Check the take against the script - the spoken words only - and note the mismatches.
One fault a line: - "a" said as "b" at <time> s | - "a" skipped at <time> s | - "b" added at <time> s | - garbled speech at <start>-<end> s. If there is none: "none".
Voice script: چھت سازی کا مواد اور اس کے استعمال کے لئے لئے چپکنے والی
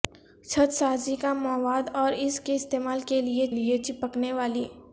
none